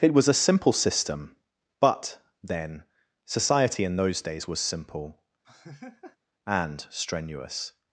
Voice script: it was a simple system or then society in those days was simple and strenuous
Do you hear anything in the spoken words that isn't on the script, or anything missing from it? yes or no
yes